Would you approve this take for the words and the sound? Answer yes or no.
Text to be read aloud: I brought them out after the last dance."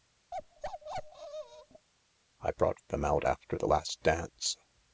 no